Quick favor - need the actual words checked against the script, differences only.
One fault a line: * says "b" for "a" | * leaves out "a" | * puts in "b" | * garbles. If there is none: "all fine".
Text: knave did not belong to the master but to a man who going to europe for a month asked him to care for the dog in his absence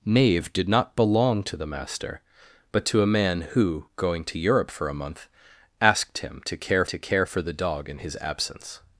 * puts in "to care"